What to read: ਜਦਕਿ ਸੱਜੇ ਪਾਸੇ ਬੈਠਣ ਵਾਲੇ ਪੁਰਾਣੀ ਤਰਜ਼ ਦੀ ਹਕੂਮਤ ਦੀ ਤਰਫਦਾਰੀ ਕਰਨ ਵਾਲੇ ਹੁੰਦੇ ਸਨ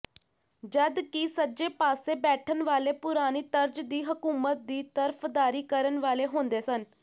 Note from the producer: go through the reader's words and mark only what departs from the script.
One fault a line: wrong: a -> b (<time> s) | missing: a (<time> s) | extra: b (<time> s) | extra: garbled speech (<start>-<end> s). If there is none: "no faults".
no faults